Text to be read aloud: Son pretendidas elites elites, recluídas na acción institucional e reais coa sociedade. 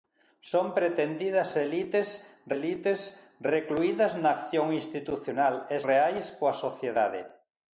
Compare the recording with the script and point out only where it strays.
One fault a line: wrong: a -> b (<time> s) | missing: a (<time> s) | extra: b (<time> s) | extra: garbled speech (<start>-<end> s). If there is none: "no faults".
no faults